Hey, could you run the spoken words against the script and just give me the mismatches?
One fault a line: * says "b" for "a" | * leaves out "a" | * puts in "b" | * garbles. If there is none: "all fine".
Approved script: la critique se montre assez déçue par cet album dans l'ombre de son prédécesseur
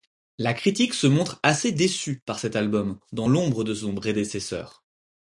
all fine